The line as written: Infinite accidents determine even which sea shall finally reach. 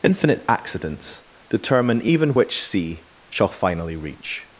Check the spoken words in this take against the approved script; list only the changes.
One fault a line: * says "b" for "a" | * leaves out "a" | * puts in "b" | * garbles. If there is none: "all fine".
all fine